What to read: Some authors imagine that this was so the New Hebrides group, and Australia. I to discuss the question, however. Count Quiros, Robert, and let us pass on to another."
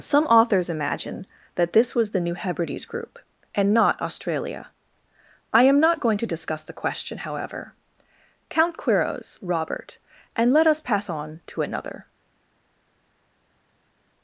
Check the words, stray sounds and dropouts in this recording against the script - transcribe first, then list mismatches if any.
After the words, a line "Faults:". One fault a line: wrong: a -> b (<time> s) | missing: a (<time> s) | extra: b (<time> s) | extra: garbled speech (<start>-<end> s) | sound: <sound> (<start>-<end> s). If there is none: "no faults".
Some authors imagine that this was the New Hebrides group, and not Australia. I am not going to discuss the question, however. Count Quiros, Robert, and let us pass on to another."
Faults:
missing: so (2.1 s)
extra: not (3.7 s)
extra: am not going (5.6 s)